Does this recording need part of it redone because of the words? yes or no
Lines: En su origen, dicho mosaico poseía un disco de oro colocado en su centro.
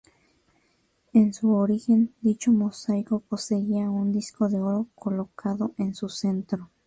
no